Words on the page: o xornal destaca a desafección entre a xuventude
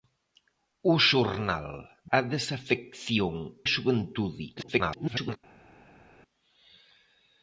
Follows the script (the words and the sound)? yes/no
no